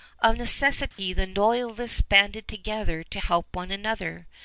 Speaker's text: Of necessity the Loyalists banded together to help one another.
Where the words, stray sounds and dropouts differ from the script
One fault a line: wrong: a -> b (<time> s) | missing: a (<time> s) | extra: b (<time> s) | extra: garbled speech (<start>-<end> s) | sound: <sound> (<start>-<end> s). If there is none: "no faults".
sound: dropout (0.9-1.0 s)